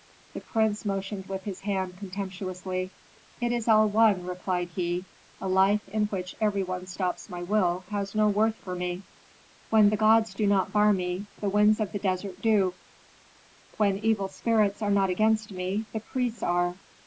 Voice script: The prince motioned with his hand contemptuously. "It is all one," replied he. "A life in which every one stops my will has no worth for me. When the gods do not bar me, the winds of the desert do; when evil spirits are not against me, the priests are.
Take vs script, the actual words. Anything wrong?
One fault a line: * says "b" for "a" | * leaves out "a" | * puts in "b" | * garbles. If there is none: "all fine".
all fine